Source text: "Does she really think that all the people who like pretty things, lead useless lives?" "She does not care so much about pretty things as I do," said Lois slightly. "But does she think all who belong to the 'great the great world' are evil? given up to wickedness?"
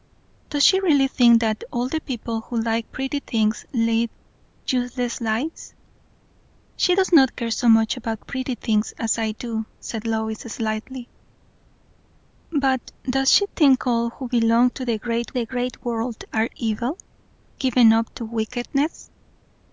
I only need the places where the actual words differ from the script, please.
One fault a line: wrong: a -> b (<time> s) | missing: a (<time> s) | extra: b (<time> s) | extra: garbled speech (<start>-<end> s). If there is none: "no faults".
no faults